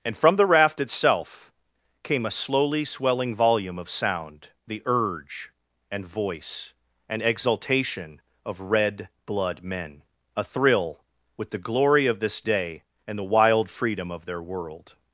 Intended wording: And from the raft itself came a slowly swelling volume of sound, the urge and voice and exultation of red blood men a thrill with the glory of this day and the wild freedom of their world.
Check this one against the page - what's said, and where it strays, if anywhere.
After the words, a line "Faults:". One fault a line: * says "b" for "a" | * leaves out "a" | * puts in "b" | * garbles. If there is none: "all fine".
And from the raft itself came a slowly swelling volume of sound, the urge and voice and exultation of red blood men a thrill with the glory of this day and the wild freedom of their world.
Faults:
all fine